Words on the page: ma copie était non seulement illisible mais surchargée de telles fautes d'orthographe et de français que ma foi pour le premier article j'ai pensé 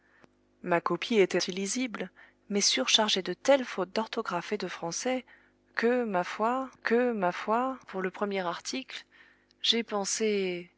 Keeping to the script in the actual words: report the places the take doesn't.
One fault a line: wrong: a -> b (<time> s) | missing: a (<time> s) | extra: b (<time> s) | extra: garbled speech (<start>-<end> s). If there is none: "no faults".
missing: non seulement (1.4 s)
extra: que ma foi (6.8 s)